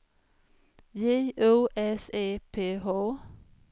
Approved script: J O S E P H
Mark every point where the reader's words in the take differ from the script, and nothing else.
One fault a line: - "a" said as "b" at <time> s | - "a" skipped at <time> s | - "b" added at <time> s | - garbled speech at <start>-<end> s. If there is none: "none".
none